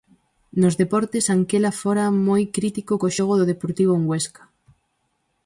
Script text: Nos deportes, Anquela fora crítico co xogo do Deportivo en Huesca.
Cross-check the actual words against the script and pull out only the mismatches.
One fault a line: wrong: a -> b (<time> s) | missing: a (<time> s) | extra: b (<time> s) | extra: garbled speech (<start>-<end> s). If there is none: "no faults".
extra: moi (2.3 s)